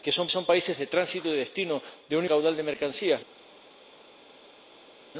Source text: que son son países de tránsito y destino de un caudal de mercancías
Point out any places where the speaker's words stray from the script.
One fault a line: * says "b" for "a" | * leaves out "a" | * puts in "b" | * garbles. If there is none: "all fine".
all fine